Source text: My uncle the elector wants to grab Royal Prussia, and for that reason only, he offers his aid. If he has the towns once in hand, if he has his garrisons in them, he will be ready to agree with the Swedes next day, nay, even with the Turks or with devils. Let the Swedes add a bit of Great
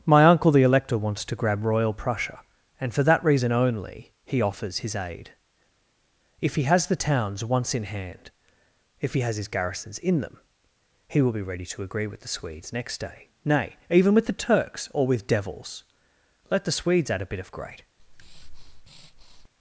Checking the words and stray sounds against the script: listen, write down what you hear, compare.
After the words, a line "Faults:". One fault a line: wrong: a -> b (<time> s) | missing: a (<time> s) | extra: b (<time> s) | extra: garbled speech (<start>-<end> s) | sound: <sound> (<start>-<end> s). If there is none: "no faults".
My uncle the elector wants to grab Royal Prussia, and for that reason only, he offers his aid. If he has the towns once in hand, if he has his garrisons in them, he will be ready to agree with the Swedes next day, nay, even with the Turks or with devils. Let the Swedes add a bit of Great
Faults:
sound: breath (18.0-19.5 s)